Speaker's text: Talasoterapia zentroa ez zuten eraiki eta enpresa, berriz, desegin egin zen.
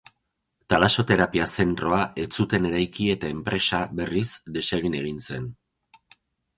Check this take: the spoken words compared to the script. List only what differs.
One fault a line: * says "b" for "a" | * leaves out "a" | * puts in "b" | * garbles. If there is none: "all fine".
all fine